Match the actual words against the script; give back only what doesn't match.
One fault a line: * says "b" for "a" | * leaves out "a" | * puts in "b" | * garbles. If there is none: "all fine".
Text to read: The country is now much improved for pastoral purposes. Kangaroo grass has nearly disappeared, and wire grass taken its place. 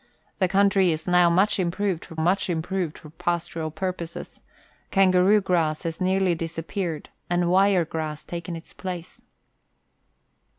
* puts in "much improved for"